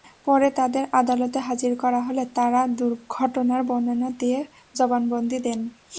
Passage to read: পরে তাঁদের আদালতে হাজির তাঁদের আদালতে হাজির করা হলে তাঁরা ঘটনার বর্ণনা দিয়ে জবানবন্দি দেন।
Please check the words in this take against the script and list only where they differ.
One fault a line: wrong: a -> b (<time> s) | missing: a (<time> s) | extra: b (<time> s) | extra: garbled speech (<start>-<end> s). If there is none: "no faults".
missing: তাঁদের আদালতে হাজির (1.7 s)